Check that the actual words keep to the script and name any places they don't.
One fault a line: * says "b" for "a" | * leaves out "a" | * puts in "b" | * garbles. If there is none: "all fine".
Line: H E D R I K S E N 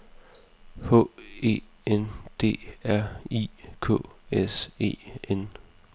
* puts in "N"